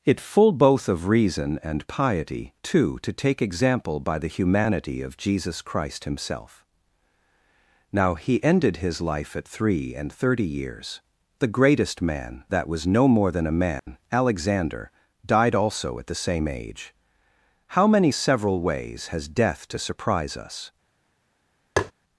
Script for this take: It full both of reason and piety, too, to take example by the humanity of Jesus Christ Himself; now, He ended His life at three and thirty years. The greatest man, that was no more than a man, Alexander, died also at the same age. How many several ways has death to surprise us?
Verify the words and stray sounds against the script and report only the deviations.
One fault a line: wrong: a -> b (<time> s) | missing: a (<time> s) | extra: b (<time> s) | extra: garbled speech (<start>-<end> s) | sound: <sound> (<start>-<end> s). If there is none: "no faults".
sound: dropout (13.8-13.9 s)
sound: tap (21.8-21.9 s)